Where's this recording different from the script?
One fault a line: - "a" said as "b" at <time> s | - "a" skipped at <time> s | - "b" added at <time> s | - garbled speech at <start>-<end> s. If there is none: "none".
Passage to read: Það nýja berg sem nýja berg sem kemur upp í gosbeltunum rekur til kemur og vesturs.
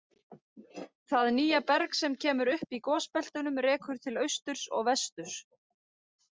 - "nýja berg sem" skipped at 2.1 s
- "kemur" said as "austurs" at 4.3 s